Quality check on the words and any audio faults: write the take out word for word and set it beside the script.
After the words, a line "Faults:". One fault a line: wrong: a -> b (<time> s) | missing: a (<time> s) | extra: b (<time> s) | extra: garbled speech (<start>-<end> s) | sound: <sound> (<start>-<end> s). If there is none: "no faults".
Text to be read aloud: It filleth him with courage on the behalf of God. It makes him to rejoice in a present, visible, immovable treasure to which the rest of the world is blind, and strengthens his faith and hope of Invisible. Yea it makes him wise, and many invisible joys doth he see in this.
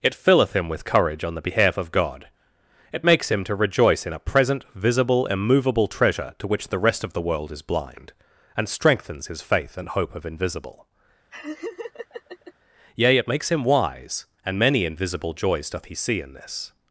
It filleth him with courage on the behalf of God. It makes him to rejoice in a present, visible, immovable treasure to which the rest of the world is blind, and strengthens his faith and hope of Invisible. Yea it makes him wise, and many invisible joys doth he see in this.
Faults:
sound: laugh (11.3-12.5 s)